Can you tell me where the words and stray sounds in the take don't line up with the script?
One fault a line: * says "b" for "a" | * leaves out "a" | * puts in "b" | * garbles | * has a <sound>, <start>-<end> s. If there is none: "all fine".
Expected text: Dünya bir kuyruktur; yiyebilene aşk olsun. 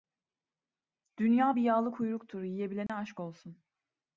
* puts in "yağlı"
* has a dropout, 2.9-2.9 s